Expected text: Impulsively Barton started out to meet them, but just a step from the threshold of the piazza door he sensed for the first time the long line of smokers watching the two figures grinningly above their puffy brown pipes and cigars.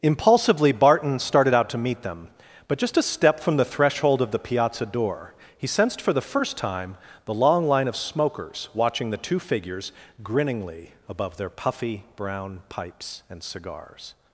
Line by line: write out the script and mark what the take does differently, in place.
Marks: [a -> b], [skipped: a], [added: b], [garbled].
Impulsively Barton started out to meet them, but just a step from the threshold of the piazza door he sensed for the first time the long line of smokers watching the two figures grinningly above their puffy brown pipes and cigars.